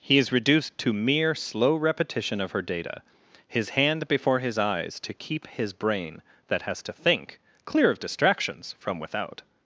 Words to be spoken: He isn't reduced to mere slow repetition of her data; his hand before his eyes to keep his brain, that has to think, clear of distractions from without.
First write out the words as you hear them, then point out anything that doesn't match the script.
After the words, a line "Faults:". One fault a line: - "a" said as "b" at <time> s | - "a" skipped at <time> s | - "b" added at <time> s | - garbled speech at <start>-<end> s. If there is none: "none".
He is reduced to mere slow repetition of her data; his hand before his eyes to keep his brain, that has to think, clear of distractions from without.
Faults:
- "isn't" said as "is" at 0.2 s